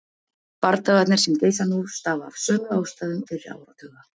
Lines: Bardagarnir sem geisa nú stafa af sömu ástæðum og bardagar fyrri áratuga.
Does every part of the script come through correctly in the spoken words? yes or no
no